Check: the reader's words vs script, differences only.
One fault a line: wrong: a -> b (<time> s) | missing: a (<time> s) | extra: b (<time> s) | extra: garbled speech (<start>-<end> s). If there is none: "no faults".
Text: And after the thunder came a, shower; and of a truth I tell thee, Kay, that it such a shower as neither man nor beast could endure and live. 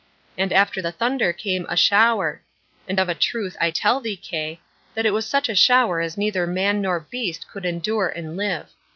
extra: was (5.1 s)